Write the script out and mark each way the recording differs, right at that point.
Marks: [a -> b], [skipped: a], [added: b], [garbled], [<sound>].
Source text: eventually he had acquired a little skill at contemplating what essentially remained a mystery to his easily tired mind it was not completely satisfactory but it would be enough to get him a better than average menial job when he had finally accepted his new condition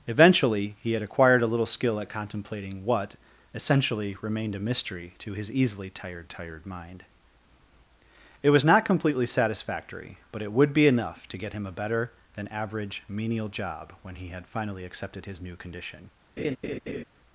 eventually he had acquired a little skill at contemplating what essentially remained a mystery to his easily tired [added: tired] mind it was not completely satisfactory but it would be enough to get him a better than average menial job when he had finally accepted his new condition [laugh]